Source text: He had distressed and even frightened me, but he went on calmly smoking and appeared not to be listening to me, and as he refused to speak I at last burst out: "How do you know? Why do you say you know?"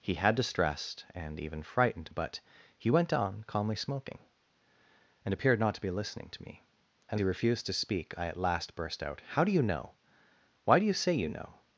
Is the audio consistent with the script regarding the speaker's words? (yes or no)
no